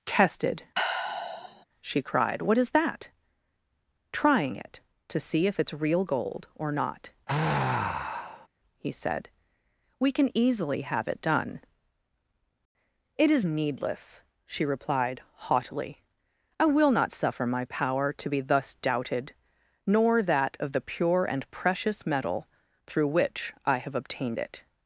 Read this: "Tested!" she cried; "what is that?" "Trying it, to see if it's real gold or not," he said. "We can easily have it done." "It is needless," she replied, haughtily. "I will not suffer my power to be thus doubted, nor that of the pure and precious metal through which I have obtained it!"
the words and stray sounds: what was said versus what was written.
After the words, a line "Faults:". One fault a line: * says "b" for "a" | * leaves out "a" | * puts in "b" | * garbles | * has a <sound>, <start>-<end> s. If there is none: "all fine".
"Tested!" she cried; "what is that?" "Trying it, to see if it's real gold or not," he said. "We can easily have it done." "It is needless," she replied, haughtily. "I will not suffer my power to be thus doubted, nor that of the pure and precious metal through which I have obtained it!"
Faults:
* has a sigh, 0.7-1.6 s
* has a sigh, 7.3-8.5 s